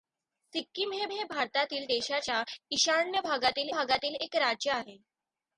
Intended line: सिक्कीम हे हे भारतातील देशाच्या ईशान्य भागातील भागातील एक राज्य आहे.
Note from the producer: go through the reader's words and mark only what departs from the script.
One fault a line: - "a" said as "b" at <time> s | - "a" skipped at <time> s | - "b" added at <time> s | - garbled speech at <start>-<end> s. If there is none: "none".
none